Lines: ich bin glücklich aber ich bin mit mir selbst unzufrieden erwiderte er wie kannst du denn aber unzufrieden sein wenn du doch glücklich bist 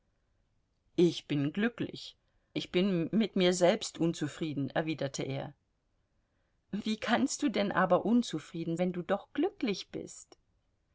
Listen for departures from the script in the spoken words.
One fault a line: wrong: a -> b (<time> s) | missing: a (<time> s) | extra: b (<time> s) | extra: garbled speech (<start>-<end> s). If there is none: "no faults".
missing: aber (2.2 s)
missing: sein (8.8 s)